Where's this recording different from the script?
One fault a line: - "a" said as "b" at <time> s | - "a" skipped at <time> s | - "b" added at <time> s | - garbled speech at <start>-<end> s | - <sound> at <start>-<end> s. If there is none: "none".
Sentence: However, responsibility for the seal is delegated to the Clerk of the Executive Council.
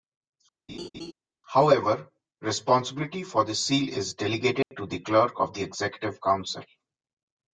- laugh at 0.7-1.1 s
- dropout at 4.6-4.7 s